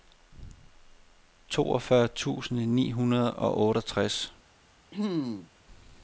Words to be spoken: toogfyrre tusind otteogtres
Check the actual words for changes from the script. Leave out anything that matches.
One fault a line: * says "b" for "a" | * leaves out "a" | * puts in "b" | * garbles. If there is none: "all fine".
* puts in "ni hundrede og"